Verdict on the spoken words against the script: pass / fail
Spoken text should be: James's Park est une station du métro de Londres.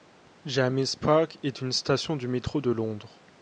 pass